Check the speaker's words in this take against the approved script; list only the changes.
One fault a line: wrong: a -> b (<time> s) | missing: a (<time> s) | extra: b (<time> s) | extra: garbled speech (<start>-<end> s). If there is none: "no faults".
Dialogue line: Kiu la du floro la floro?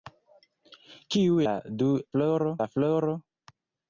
no faults